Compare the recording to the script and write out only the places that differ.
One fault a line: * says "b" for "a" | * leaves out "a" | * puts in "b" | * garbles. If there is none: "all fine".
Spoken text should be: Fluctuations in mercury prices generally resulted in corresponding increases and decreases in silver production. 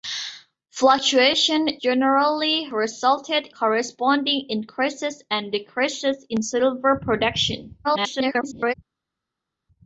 * leaves out "in mercury prices"
* leaves out "in"
* garbles